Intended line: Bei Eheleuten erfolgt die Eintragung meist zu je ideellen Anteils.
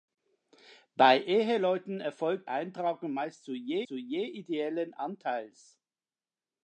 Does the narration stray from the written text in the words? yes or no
yes